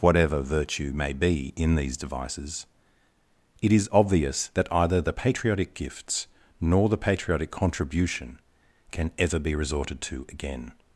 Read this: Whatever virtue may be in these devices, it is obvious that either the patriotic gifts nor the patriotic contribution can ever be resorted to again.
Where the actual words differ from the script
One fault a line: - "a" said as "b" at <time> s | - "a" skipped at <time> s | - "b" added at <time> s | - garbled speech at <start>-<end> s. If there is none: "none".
none